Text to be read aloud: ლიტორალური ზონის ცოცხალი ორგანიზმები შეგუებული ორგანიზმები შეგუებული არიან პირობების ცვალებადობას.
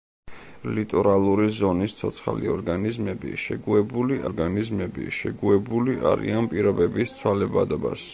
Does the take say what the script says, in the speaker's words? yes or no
yes